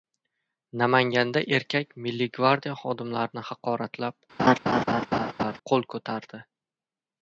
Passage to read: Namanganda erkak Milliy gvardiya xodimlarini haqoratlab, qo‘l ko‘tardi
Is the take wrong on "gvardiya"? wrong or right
right